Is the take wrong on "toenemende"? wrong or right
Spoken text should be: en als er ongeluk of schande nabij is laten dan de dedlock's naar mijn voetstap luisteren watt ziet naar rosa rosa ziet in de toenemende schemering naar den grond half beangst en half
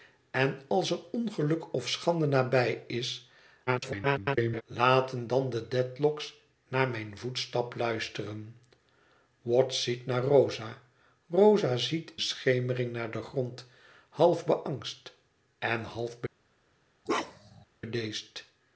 wrong